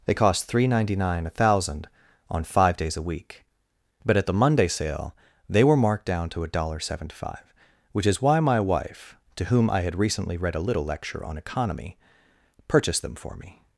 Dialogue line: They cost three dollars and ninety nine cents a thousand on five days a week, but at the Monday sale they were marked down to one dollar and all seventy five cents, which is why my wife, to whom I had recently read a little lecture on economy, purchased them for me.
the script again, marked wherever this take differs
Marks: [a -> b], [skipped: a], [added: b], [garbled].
They cost three dollars and ninety nine cents a thousand on five days a week, but at the Monday sale they were marked down to one dollar and [skipped: all] seventy five cents, which is why my wife, to whom I had recently read a little lecture on economy, purchased them for me.